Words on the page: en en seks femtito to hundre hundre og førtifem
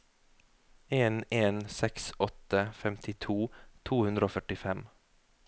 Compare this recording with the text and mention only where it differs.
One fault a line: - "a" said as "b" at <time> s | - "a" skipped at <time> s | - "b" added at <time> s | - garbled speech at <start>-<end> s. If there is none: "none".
- "åtte" added at 2.3 s
- "hundre" skipped at 4.3 s